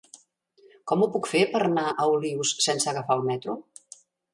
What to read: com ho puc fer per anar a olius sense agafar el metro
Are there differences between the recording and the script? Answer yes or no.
no